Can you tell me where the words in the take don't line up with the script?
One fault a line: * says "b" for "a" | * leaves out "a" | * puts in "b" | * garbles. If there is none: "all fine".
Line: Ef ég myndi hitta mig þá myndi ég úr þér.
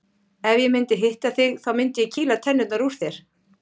* says "þig" for "mig"
* puts in "kýla tennurnar"